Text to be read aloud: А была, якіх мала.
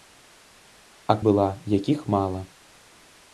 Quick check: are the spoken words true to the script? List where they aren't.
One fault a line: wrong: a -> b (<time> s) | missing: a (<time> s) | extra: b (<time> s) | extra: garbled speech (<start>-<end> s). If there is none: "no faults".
no faults